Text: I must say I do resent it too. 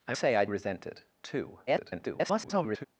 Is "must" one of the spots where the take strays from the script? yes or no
yes